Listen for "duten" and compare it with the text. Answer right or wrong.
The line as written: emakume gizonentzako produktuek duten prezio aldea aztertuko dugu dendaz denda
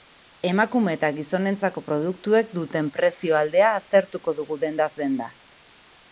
right